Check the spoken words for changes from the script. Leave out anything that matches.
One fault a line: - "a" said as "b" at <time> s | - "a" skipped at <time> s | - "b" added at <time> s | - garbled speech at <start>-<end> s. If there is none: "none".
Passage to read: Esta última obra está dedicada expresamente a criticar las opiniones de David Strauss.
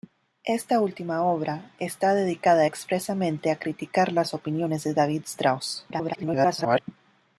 - garbled speech at 5.9-6.8 s